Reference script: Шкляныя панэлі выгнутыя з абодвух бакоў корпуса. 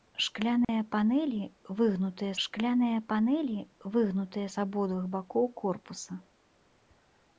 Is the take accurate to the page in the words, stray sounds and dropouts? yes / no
no